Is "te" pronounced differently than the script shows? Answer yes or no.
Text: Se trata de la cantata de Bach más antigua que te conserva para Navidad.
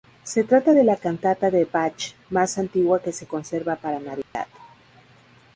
yes